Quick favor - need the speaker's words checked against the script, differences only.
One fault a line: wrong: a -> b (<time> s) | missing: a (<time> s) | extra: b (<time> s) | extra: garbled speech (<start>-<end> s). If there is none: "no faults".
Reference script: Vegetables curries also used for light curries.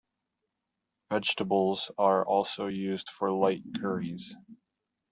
wrong: curries -> are (2.0 s)